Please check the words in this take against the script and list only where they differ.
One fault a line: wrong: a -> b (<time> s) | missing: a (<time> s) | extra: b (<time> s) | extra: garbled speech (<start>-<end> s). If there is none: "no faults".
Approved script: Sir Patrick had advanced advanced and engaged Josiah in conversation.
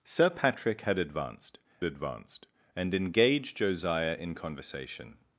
no faults